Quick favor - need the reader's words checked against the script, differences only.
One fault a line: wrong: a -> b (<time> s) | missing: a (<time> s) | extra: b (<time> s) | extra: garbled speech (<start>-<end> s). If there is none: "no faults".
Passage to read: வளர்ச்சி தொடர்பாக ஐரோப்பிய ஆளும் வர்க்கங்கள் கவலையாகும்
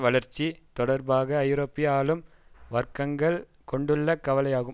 extra: கொண்டுள்ள (3.6 s)